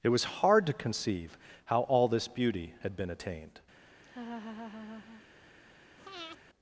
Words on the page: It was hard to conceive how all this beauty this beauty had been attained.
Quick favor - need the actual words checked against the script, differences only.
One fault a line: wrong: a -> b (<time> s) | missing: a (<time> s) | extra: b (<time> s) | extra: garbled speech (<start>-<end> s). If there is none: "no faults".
missing: this beauty (2.7 s)